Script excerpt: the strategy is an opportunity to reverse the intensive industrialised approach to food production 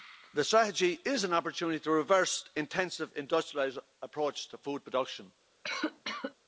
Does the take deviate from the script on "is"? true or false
false